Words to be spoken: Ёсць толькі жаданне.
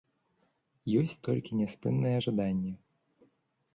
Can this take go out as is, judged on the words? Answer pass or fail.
fail